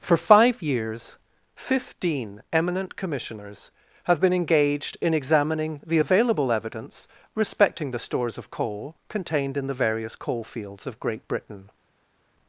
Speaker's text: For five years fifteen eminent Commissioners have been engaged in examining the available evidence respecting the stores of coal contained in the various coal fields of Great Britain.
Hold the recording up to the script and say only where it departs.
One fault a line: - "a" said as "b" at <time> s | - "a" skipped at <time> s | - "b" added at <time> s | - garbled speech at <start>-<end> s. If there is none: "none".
none